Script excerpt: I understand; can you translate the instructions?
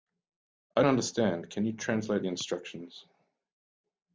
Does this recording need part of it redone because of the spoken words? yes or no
no